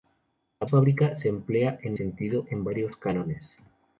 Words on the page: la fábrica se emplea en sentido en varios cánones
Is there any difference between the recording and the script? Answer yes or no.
no